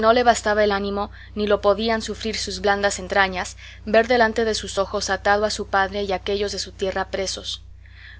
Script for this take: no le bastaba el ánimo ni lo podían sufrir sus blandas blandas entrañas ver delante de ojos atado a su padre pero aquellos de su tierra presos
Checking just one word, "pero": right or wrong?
wrong